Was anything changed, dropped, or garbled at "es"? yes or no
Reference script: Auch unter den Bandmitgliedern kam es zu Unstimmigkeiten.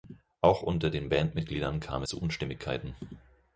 yes